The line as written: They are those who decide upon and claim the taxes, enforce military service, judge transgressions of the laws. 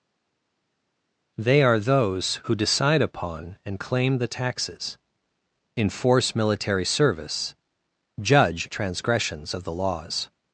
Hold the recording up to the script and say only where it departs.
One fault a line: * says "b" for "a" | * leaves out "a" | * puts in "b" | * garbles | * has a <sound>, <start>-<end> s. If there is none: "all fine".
all fine